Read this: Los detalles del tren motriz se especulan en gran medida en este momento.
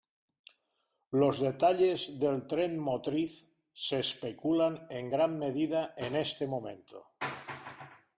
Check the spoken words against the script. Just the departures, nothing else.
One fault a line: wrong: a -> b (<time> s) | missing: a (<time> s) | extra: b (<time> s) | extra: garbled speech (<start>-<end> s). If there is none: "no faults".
no faults